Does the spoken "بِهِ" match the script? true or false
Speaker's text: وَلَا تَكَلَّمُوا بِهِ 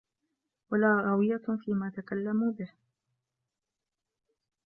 true